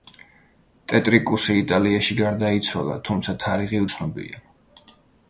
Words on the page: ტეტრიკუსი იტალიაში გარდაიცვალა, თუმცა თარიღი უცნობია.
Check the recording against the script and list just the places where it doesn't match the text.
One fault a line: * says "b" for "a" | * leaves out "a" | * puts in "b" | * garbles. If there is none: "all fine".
all fine